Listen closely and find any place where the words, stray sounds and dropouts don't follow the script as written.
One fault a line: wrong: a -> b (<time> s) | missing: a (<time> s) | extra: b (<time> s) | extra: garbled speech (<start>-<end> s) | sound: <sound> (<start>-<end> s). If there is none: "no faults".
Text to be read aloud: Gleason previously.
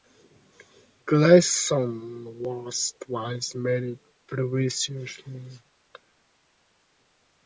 extra: was twice married (2.4 s)